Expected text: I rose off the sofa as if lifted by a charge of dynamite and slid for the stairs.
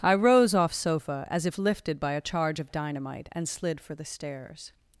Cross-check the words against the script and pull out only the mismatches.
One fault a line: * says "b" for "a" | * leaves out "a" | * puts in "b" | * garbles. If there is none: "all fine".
* leaves out "the"